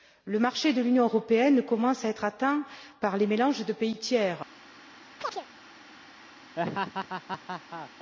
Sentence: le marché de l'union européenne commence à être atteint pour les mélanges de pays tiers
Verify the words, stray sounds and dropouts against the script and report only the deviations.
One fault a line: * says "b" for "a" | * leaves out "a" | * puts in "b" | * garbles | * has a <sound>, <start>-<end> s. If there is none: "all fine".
* says "par" for "pour"
* has a chirp, 5.2-5.5 s
* has a laugh, 6.6-7.9 s